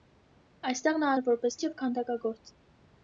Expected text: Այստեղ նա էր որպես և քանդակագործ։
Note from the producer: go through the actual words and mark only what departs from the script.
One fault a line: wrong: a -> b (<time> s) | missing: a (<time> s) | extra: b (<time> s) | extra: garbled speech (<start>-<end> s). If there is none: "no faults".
no faults